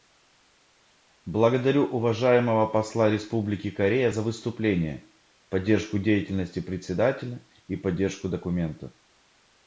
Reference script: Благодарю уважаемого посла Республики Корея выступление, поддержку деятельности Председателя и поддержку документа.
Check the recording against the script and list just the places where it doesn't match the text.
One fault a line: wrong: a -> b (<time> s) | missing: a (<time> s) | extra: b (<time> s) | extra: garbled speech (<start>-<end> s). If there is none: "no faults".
extra: за (4.1 s)